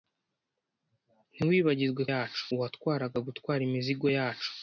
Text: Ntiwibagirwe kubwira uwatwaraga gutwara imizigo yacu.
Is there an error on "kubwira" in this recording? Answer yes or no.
yes